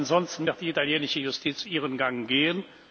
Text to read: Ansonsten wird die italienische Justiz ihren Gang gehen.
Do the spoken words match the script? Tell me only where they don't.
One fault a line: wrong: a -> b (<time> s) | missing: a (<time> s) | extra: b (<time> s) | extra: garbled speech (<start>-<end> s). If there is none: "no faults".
no faults